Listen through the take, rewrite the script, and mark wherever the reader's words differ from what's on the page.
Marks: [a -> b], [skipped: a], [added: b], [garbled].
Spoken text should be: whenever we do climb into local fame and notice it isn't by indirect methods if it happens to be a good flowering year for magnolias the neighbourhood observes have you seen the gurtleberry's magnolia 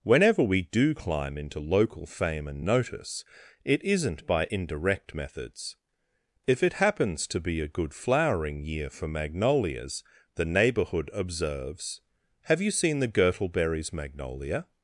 whenever we do climb into local fame and notice it isn't by indirect methods if it happens to be a good flowering year for magnolias the neighbourhood observes have you seen the gurtleberry's magnolia